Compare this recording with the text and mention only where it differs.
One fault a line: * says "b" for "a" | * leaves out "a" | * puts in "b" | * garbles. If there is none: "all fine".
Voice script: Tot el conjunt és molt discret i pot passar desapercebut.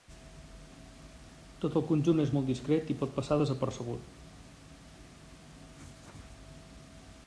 all fine